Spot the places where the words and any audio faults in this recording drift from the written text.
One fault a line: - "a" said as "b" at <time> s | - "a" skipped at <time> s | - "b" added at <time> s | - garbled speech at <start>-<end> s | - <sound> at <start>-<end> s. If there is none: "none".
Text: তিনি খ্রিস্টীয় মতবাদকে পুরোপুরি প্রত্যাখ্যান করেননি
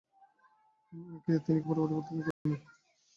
- "খ্রিস্টীয় মতবাদকে" skipped at 1.6 s
- dropout at 2.3-2.5 s